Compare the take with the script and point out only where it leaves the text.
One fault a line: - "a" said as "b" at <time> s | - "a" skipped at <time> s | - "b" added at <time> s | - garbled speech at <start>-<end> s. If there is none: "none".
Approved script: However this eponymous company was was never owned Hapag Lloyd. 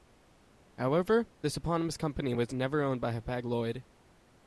- "was" skipped at 2.5 s
- "by" added at 3.0 s